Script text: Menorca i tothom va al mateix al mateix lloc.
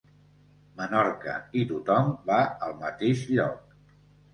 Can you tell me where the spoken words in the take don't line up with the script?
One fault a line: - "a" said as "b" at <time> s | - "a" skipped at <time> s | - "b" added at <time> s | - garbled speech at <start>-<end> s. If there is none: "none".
- "al mateix" skipped at 3.3 s